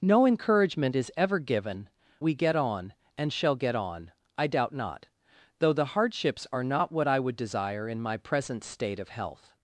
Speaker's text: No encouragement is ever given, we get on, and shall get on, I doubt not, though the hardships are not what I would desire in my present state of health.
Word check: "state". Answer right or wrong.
right